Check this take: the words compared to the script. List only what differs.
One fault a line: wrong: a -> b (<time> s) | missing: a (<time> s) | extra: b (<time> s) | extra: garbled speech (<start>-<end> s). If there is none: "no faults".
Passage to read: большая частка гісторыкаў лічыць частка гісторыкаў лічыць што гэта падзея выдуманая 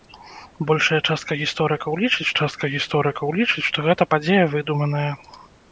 no faults